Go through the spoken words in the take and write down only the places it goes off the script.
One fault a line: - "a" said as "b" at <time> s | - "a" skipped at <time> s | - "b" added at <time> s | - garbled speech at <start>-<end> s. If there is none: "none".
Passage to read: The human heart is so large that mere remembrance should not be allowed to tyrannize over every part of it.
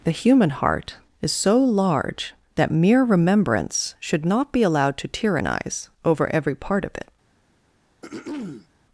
none